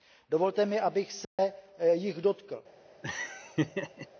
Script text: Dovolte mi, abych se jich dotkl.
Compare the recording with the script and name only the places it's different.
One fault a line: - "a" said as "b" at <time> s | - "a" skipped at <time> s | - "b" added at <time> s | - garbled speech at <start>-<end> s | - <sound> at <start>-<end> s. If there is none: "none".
- dropout at 1.2-1.4 s
- laugh at 3.0-4.1 s